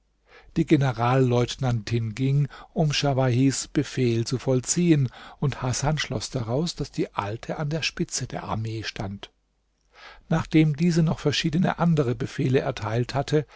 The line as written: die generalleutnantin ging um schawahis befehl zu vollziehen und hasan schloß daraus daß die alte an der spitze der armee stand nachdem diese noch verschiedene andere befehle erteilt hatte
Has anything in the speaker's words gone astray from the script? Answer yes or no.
no